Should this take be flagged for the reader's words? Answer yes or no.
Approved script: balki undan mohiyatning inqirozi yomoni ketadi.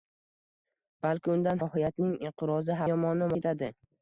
no